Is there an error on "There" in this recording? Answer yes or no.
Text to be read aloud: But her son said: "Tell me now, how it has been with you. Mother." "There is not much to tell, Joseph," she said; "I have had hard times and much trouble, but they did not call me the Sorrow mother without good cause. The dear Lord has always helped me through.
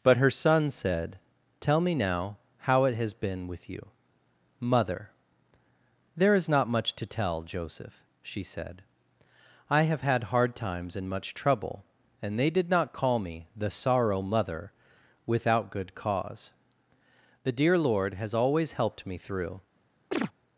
no